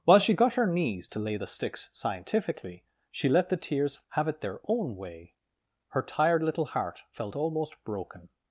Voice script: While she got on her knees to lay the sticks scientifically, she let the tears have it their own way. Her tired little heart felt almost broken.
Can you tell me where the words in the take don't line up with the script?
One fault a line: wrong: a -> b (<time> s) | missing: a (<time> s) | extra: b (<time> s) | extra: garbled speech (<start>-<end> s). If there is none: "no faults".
missing: on (0.6 s)